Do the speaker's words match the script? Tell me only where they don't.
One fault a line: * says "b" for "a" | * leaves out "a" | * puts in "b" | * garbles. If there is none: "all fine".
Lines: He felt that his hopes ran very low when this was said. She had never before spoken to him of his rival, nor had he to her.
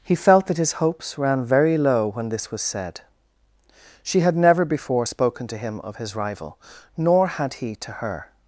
all fine